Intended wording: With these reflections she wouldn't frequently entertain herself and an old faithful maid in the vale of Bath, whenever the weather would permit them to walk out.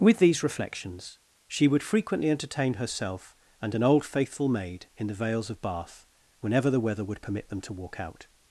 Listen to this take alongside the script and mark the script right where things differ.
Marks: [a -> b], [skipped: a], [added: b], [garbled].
With these reflections she [wouldn't -> would] frequently entertain herself and an old faithful maid in the [vale -> vales] of Bath, whenever the weather would permit them to walk out.